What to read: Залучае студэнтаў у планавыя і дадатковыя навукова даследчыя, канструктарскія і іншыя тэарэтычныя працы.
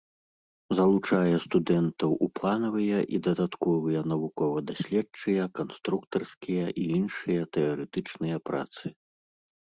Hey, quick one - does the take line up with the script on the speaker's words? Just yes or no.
yes